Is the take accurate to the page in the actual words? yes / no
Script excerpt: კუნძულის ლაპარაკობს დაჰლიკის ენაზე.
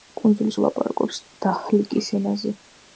yes